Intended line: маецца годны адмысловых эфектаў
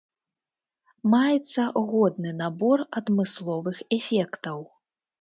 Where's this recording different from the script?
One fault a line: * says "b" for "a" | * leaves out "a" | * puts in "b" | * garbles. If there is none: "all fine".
* puts in "набор"